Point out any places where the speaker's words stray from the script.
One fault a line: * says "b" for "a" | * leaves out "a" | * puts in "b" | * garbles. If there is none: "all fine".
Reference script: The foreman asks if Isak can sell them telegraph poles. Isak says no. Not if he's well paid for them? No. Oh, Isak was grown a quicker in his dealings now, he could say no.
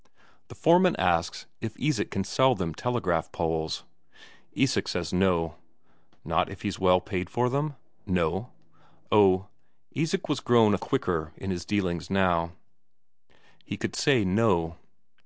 all fine